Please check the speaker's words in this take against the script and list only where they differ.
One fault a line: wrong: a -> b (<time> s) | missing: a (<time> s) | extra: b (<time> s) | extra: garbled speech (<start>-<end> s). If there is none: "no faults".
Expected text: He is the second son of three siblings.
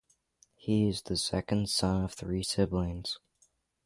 no faults